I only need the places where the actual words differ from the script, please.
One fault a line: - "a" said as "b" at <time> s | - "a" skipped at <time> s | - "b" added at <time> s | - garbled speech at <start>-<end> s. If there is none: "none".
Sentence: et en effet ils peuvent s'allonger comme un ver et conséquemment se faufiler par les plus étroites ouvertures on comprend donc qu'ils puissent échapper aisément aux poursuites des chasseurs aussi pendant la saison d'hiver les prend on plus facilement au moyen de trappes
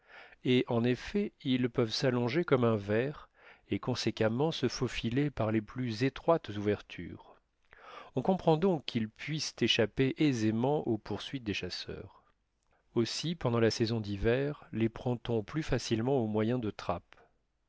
none